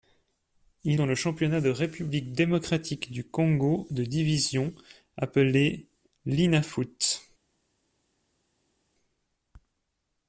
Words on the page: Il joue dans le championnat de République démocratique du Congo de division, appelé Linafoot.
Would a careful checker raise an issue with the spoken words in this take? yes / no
yes